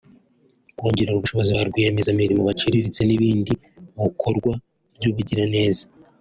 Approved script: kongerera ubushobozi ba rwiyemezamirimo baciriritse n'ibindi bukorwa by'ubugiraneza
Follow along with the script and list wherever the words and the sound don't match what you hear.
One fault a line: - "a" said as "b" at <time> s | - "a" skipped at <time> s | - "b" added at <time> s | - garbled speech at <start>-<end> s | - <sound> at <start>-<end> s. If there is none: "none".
none